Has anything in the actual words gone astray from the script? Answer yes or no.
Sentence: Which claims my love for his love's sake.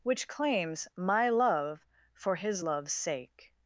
no